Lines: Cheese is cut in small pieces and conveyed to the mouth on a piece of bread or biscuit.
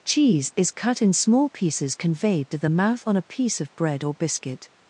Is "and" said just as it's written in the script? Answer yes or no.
no